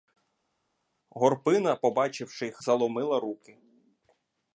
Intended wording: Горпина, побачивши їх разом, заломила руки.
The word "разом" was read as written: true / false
false